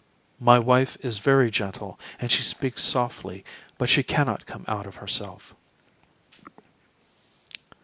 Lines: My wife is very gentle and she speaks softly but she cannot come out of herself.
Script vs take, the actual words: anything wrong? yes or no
no